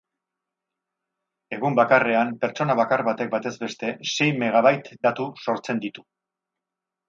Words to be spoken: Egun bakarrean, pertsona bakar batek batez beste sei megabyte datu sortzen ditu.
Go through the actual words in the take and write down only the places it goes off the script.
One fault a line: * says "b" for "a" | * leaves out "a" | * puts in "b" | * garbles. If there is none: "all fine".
all fine